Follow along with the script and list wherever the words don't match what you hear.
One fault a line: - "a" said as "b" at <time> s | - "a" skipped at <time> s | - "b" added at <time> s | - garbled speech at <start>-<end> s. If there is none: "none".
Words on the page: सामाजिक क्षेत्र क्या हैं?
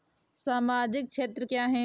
none